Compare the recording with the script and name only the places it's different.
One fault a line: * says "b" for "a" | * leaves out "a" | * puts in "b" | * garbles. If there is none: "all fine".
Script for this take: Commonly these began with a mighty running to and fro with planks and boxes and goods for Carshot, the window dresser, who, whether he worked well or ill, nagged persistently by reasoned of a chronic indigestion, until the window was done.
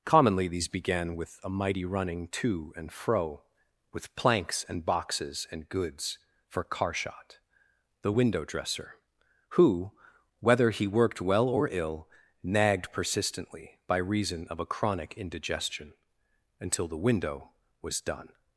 * says "reason" for "reasoned"